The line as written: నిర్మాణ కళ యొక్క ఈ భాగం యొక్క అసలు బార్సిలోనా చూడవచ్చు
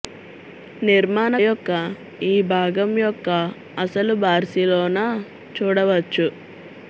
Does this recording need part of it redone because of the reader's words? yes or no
yes